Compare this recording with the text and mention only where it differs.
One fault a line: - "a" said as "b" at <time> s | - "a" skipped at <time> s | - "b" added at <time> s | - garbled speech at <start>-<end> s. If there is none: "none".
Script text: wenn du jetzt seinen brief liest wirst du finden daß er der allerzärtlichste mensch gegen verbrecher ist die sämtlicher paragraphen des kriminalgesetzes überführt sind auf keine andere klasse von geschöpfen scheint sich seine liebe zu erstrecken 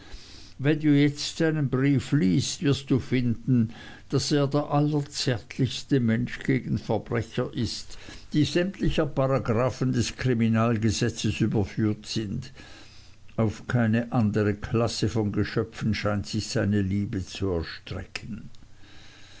none